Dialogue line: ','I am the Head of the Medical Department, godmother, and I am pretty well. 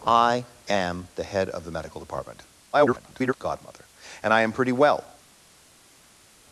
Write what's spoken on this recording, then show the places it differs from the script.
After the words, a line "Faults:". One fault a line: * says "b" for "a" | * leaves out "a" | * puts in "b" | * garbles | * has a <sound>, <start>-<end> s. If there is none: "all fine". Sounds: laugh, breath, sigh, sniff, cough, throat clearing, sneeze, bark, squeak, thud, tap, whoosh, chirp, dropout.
','I am the Head of the Medical Department, [garbled] godmother, and I am pretty well.
Faults:
* garbles